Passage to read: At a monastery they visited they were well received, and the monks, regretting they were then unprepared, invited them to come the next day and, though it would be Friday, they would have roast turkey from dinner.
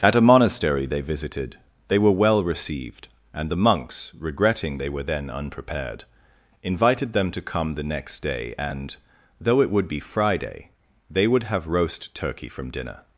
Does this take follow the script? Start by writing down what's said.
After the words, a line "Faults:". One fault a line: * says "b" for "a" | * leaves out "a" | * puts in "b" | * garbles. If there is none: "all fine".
At a monastery they visited they were well received, and the monks, regretting they were then unprepared, invited them to come the next day and, though it would be Friday, they would have roast turkey from dinner.
Faults:
all fine